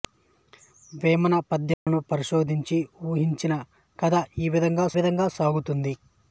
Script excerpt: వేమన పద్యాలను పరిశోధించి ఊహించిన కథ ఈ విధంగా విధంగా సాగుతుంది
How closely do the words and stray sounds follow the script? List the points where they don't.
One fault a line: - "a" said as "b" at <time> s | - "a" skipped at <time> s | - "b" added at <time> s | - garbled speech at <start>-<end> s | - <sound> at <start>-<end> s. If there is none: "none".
- dropout at 1.7-1.9 s